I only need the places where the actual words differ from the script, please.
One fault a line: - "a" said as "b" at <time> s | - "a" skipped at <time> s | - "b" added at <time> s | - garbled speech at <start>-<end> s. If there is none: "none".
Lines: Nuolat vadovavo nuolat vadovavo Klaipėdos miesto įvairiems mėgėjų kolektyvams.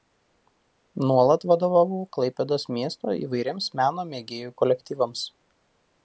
- "nuolat vadovavo" skipped at 2.0 s
- "meno" added at 3.8 s